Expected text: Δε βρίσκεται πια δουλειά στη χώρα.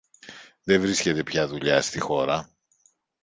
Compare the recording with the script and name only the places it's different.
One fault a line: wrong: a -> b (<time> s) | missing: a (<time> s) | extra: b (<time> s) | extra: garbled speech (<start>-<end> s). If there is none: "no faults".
no faults